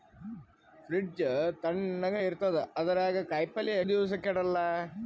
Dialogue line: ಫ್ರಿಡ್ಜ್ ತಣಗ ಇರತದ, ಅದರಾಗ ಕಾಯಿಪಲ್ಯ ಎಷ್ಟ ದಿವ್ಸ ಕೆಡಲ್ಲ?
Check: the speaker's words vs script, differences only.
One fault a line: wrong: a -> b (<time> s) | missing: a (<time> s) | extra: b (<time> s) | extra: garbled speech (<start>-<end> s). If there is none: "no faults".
missing: ಎಷ್ಟ (3.8 s)